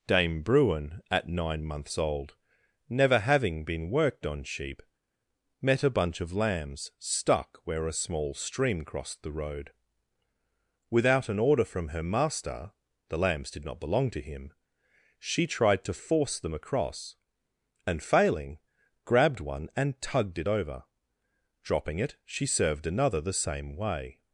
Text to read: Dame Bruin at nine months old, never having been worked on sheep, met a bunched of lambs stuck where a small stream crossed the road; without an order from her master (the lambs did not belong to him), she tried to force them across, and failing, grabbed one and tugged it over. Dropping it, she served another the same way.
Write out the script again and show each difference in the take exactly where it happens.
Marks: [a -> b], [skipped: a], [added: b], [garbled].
Dame Bruin at nine months old, never having been worked on sheep, met a [bunched -> bunch] of lambs stuck where a small stream crossed the road; without an order from her master (the lambs did not belong to him), she tried to force them across, and failing, grabbed one and tugged it over. Dropping it, she served another the same way.